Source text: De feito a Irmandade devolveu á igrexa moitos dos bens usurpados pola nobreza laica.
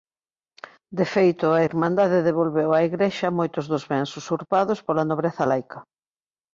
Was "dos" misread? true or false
false